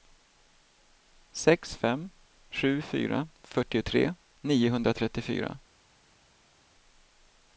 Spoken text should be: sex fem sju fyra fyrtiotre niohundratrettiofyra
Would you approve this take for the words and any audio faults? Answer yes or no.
yes